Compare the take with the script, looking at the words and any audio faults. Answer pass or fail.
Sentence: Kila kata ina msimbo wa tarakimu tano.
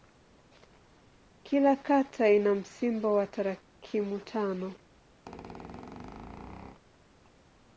fail